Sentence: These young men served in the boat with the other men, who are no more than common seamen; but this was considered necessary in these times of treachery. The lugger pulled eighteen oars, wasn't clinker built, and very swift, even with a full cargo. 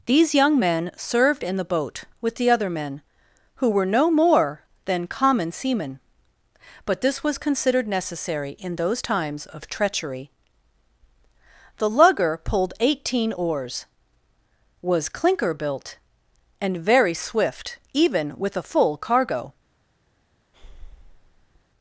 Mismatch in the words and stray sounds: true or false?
true